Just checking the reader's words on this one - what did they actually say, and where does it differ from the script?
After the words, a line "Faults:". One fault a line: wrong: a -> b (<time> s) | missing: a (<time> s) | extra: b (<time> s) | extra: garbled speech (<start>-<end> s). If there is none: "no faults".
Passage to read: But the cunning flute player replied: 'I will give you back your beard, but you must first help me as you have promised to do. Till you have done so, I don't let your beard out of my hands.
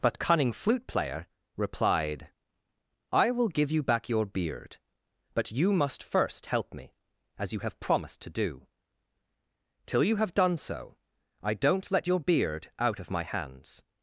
But cunning flute player replied: 'I will give you back your beard, but you must first help me as you have promised to do. Till you have done so, I don't let your beard out of my hands.
Faults:
missing: the (0.2 s)